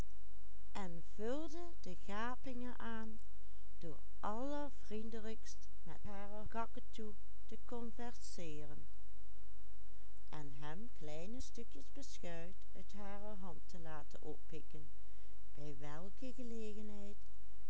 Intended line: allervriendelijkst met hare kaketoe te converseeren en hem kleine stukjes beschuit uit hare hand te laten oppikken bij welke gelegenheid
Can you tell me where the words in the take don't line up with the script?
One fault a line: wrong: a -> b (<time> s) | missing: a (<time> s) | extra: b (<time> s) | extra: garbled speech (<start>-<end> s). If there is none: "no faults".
no faults